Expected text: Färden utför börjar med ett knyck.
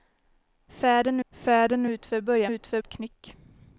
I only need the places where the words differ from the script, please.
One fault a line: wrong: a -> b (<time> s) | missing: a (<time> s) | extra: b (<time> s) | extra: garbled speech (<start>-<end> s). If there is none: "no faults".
extra: färden (1.3 s)
wrong: med -> utför (2.4 s)